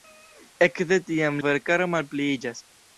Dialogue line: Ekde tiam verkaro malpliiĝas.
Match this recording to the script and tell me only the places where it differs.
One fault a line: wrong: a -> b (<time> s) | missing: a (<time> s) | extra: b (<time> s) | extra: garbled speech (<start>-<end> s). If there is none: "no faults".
no faults